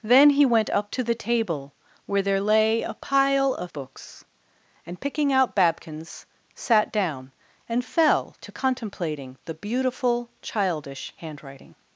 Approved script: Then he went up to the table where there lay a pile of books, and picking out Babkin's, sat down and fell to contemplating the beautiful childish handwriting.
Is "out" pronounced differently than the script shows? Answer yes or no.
no